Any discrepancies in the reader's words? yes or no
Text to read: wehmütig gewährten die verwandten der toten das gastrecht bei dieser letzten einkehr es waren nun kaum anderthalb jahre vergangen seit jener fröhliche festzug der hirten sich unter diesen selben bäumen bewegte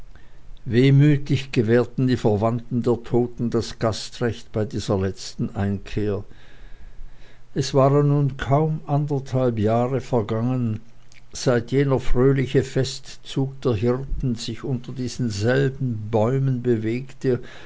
no